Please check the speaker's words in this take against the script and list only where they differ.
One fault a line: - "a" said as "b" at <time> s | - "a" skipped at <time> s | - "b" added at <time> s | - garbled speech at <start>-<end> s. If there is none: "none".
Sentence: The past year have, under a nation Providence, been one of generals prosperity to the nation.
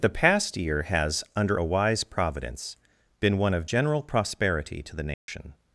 - "have" said as "has" at 0.8 s
- "nation" said as "wise" at 1.6 s
- "generals" said as "general" at 3.6 s